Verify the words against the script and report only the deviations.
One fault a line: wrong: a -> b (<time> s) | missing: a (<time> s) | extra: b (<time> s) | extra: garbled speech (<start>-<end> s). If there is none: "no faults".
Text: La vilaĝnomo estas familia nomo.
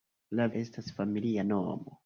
missing: vilaĝnomo (0.5 s)